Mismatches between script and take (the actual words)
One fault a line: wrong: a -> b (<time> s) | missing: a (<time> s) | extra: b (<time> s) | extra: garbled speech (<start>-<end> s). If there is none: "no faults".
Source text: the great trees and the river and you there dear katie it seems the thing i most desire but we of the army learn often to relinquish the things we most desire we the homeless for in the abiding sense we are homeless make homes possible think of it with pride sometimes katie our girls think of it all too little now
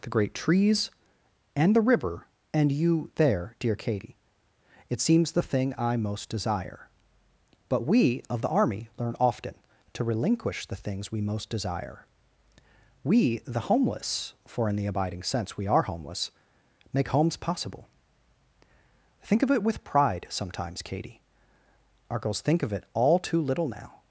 no faults